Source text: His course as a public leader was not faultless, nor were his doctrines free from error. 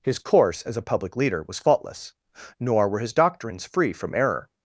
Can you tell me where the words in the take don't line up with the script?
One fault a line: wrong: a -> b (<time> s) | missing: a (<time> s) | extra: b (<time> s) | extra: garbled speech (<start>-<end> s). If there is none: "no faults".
missing: not (1.6 s)